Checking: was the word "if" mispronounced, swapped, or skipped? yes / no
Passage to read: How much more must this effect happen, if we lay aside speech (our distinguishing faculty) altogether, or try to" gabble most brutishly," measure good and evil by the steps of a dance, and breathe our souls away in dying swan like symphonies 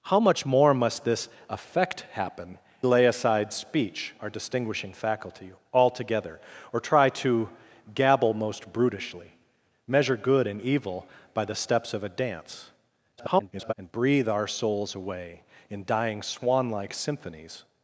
yes